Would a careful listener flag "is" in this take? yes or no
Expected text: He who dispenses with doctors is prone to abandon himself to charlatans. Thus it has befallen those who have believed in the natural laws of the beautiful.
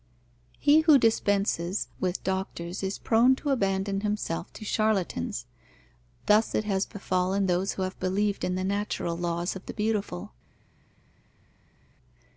no